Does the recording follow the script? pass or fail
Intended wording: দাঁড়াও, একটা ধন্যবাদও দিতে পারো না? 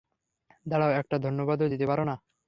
pass